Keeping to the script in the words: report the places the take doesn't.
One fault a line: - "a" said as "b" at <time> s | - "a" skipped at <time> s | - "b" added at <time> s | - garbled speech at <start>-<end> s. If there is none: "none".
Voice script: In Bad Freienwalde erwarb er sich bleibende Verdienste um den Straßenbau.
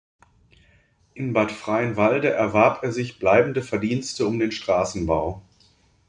none